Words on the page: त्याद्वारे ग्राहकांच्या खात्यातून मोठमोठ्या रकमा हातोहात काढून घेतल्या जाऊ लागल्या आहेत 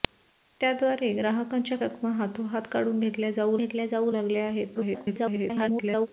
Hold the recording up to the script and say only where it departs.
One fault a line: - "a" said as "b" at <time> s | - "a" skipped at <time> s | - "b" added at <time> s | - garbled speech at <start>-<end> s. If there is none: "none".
- "खात्यातून मोठमोठ्या" skipped at 1.8 s
- "घेतल्या जाऊ" added at 3.6 s
- garbled speech at 4.7-6.1 s